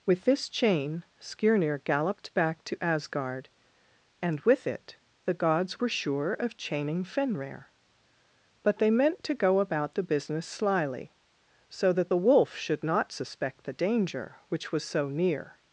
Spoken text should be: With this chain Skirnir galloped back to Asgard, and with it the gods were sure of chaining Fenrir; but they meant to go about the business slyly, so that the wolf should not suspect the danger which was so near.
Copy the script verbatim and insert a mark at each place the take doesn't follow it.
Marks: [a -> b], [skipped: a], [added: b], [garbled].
With this chain Skirnir galloped back to Asgard, and with it the gods were sure of chaining Fenrir; but they meant to go about the business slyly, so that the wolf should not suspect the danger which was so near.